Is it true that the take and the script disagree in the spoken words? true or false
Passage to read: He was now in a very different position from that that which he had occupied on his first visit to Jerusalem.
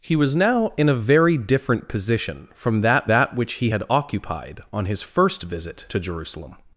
false